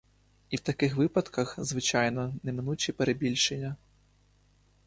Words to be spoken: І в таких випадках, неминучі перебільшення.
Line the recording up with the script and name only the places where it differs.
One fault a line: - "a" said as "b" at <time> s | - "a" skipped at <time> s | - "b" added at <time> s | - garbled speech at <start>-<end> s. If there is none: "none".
- "звичайно" added at 1.6 s